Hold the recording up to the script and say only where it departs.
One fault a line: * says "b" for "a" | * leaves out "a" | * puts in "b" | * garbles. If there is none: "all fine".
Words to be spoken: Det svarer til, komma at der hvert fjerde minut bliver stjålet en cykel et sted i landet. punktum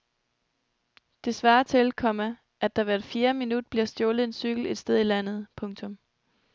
all fine